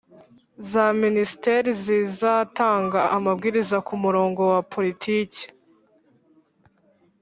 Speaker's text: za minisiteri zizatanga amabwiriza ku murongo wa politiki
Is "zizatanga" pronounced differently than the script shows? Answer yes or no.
no